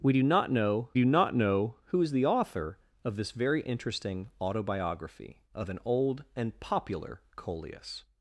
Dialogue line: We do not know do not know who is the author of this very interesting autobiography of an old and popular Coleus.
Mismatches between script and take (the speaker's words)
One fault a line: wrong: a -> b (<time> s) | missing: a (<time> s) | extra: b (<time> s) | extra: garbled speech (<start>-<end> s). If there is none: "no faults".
no faults